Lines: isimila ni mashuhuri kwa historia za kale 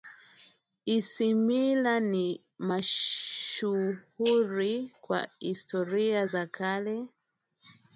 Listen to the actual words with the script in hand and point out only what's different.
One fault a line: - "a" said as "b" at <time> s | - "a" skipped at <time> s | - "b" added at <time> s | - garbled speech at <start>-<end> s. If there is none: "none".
none